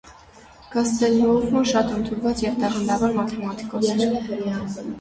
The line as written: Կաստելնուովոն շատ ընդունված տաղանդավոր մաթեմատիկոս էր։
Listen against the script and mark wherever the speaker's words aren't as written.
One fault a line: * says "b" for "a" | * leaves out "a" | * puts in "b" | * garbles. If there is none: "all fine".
* puts in "և"